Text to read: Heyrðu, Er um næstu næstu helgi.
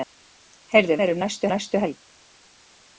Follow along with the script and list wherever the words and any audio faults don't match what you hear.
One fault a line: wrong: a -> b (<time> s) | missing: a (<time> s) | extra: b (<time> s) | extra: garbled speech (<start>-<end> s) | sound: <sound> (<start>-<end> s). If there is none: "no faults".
no faults